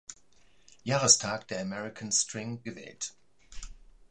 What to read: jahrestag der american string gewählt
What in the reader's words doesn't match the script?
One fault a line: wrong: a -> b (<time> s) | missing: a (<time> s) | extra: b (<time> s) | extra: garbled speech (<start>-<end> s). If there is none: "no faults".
no faults